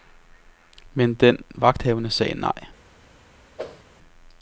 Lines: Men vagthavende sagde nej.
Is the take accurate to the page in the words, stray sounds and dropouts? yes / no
no